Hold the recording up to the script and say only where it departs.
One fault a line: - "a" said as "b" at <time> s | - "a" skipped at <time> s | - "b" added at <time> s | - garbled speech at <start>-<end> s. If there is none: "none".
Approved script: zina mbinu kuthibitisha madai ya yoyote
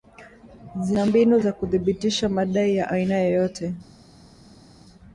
- "za" added at 1.4 s
- "aina" added at 2.9 s